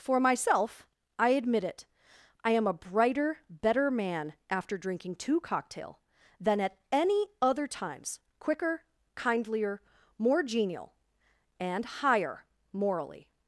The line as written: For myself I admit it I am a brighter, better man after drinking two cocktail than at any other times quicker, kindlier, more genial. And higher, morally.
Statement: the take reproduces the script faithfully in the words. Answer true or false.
true